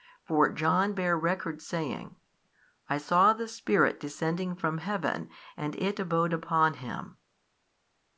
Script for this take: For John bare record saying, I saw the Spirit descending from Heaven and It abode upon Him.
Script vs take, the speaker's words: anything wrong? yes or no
no